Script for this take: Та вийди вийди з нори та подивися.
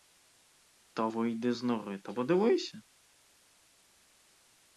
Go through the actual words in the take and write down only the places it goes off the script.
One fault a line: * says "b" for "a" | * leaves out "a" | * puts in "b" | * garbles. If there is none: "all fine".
* leaves out "вийди"